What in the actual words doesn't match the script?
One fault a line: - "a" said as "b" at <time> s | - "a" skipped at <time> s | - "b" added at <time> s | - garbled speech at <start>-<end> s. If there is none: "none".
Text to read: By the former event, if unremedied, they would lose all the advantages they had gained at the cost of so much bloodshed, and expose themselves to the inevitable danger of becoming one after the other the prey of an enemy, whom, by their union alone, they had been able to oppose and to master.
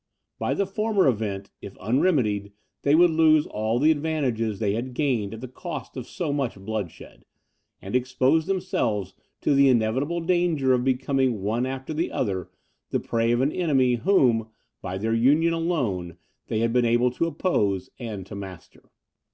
none